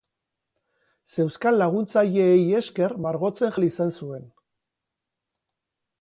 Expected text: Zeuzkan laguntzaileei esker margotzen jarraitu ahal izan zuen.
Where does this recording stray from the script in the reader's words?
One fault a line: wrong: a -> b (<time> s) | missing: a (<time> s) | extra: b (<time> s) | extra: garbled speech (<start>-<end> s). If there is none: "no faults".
missing: jarraitu (3.5 s)